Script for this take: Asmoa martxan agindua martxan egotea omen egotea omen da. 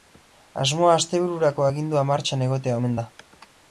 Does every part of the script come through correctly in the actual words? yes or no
no